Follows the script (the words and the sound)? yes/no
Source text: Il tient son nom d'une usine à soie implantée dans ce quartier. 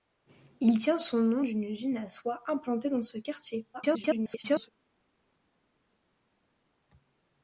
no